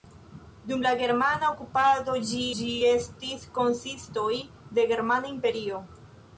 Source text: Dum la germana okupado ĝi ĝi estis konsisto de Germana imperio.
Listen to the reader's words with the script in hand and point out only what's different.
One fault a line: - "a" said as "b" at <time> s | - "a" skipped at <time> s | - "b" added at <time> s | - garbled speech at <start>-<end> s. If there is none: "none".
none